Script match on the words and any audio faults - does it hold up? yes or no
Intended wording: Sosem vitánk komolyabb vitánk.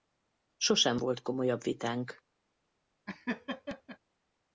no